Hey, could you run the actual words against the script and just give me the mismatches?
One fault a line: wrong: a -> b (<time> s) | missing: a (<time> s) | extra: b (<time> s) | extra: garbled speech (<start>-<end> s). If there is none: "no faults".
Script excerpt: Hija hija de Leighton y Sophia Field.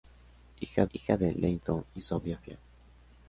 no faults